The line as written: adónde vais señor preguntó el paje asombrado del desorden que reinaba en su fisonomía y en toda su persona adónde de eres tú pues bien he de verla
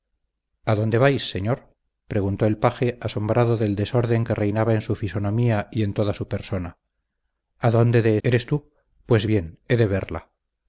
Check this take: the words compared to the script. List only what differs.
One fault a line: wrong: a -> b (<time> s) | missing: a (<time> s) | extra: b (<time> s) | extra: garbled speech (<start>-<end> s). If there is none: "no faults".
no faults